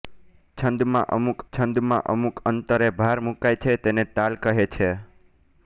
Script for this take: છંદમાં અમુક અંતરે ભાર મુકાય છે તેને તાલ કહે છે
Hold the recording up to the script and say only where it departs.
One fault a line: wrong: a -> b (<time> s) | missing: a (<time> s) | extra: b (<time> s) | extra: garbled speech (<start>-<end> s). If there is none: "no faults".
extra: છંદમાં અમુક (1.5 s)